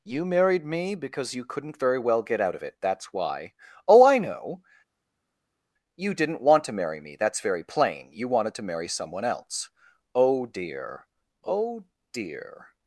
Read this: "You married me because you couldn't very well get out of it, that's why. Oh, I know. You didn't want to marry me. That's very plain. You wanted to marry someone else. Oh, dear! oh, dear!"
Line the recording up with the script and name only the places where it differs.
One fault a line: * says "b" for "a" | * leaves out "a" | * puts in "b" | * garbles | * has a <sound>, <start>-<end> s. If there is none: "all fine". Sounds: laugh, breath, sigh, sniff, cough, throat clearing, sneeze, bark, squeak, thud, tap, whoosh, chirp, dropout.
all fine